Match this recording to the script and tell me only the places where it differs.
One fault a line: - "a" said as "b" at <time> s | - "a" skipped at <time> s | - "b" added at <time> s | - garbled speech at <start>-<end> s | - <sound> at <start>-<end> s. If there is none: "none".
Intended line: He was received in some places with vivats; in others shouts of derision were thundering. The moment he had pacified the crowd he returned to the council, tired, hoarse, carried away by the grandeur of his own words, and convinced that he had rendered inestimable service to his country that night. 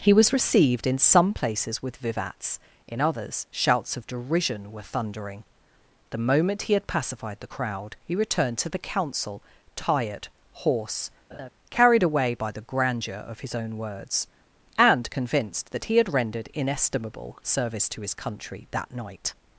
- laugh at 11.3-11.5 s